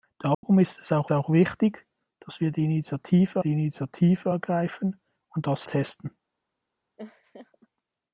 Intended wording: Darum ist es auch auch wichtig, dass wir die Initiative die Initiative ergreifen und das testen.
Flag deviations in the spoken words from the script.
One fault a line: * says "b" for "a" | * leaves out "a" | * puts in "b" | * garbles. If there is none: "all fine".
all fine